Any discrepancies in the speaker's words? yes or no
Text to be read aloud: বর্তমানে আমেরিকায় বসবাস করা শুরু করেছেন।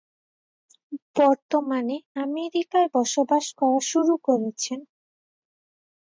no